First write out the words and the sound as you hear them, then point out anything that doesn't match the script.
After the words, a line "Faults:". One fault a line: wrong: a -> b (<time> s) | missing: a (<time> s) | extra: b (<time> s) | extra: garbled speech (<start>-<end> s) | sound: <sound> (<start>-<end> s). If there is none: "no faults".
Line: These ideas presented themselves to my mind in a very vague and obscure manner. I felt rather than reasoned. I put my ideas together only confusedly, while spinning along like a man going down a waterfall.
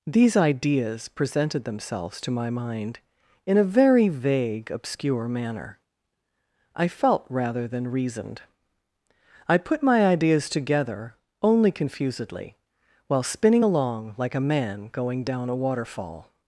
These ideas presented themselves to my mind in a very vague obscure manner. I felt rather than reasoned. I put my ideas together only confusedly, while spinning along like a man going down a waterfall.
Faults:
missing: and (4.7 s)